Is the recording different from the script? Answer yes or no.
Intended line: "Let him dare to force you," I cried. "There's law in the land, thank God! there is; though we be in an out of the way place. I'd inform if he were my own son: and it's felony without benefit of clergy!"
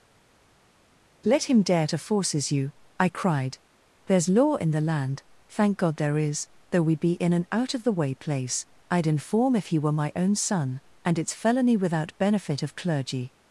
yes